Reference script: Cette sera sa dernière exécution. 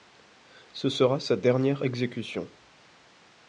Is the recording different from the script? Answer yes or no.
yes